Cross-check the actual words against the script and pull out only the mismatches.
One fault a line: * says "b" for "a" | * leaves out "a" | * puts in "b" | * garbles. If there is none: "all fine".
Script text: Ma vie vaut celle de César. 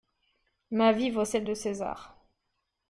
all fine